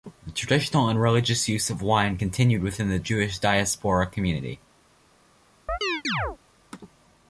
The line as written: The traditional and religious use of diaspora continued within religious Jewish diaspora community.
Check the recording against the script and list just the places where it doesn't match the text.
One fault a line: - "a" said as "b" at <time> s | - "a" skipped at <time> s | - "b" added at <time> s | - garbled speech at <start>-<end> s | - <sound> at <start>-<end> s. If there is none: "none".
- "diaspora" said as "wine" at 1.8 s
- "religious" said as "the" at 2.9 s
- chirp at 5.7-6.4 s